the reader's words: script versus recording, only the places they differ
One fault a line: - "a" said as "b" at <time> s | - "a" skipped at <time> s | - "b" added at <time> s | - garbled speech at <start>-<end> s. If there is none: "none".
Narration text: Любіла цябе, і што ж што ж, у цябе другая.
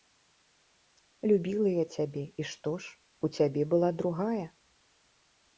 - "я" added at 1.7 s
- "што ж" skipped at 3.0 s
- "была" added at 3.8 s